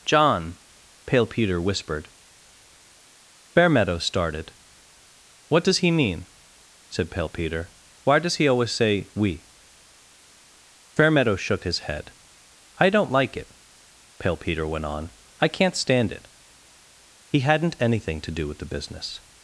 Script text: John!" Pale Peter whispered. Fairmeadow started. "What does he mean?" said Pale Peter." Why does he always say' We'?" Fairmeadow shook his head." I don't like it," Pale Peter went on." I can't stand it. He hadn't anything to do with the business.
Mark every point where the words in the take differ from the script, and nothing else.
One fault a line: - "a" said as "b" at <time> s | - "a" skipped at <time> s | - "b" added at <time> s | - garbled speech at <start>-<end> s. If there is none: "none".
none